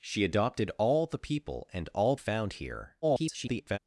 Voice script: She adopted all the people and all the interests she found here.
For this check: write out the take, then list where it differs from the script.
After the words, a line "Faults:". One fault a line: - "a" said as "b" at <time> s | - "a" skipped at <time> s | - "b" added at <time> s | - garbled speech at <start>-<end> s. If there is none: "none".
She adopted all the people and all found here. [garbled]
Faults:
- "the interests she" skipped at 2.1 s
- garbled speech at 3.0-3.8 s